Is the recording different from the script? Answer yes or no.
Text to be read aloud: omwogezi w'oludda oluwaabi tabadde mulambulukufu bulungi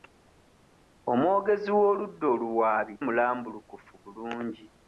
yes